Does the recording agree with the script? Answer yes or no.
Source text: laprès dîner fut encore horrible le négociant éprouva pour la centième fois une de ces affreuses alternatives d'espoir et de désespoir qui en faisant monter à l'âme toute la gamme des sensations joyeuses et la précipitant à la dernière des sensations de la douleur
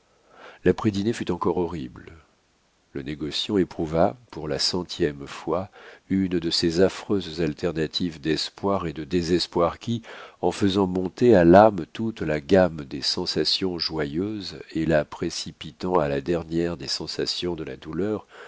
yes